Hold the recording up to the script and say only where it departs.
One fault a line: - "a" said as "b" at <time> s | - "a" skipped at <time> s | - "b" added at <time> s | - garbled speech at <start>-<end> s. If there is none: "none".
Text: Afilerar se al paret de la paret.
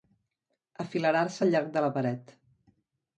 - "paret" said as "llarg" at 1.5 s